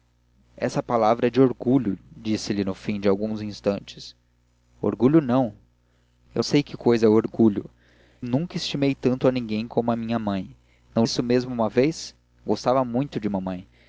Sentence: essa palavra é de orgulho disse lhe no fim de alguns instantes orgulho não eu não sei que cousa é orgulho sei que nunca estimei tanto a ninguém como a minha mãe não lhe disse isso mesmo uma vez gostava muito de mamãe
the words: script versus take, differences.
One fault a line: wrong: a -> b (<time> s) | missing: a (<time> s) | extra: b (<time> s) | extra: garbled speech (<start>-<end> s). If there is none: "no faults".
missing: não (6.4 s)
missing: sei que (7.7 s)
missing: lhe disse (11.1 s)